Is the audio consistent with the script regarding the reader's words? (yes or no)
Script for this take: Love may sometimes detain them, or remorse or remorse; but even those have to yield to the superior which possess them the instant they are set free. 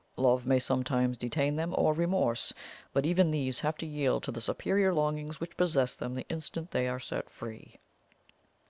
no